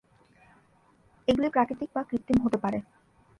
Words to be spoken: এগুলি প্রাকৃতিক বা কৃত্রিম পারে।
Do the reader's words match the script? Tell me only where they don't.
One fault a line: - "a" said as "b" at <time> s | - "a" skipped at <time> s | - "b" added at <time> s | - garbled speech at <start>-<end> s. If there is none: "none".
- "হতে" added at 2.4 s